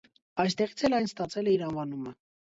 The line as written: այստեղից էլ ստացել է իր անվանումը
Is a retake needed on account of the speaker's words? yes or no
yes